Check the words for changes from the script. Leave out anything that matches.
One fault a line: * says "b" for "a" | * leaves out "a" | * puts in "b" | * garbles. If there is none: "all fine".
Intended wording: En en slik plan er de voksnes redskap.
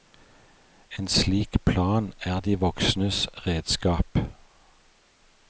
* leaves out "en"